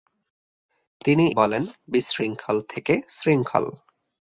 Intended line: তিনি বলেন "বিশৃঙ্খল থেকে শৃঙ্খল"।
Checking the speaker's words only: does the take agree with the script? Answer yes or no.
yes